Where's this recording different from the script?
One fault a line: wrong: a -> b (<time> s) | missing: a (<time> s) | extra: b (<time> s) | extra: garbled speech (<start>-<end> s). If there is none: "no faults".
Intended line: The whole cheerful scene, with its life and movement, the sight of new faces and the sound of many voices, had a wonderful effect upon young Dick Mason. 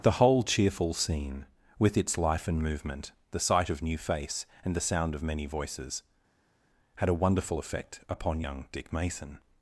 wrong: faces -> face (4.0 s)